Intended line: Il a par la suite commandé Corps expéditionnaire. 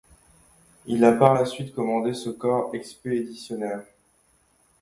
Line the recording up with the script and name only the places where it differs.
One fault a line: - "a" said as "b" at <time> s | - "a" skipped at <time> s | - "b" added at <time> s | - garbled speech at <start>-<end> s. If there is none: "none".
- "ce" added at 2.1 s